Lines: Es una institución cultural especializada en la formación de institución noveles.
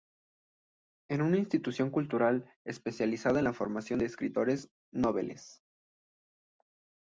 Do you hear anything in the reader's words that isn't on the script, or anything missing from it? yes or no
yes